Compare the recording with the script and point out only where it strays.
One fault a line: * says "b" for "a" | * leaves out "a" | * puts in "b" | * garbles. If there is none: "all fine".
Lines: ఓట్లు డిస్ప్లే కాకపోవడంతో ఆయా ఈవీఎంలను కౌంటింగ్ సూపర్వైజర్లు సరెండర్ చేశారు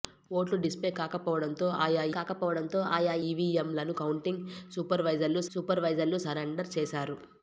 * puts in "కాకపోవడంతో ఆయా"
* puts in "సూపర్వైజర్లు"